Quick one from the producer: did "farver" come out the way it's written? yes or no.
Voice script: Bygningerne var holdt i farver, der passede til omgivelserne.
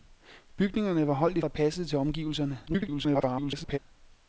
no